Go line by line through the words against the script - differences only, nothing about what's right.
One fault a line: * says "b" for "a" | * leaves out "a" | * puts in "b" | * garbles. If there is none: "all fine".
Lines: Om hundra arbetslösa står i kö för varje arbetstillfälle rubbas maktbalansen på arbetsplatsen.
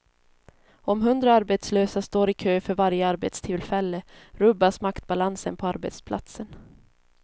all fine